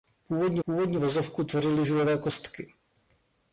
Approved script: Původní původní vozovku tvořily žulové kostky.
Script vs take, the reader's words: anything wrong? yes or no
no